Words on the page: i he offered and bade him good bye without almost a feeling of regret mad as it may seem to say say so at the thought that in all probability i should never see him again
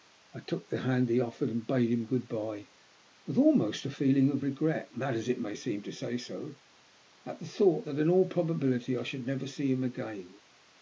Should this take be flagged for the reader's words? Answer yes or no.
yes